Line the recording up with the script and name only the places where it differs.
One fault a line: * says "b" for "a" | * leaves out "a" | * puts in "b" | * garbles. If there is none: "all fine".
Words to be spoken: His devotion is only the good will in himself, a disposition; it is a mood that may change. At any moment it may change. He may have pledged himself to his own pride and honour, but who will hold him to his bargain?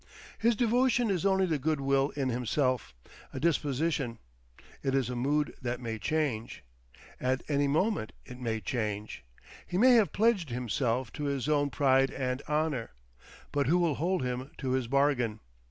all fine